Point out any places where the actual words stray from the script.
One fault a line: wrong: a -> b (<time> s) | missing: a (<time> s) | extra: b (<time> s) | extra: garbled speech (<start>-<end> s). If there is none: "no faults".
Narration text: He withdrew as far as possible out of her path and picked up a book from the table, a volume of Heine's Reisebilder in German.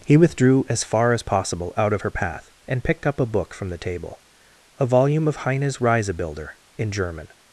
no faults